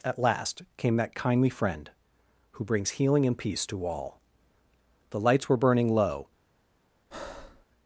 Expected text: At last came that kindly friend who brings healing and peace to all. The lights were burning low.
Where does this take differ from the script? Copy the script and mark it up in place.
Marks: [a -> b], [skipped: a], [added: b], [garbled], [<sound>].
At last came that kindly friend who brings healing and peace to all. The lights were burning low. [breath]